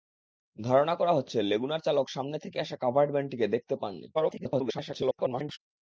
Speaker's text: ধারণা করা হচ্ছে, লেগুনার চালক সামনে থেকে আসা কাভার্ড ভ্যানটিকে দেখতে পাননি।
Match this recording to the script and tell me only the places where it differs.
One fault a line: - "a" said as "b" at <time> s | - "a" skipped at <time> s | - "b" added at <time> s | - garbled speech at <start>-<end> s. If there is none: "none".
- garbled speech at 4.1-5.6 s